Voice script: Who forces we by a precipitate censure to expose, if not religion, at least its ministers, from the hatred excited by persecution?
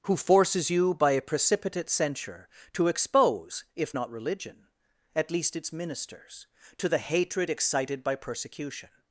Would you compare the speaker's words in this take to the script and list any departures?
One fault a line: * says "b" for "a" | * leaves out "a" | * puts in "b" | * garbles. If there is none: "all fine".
* says "you" for "we"
* says "to" for "from"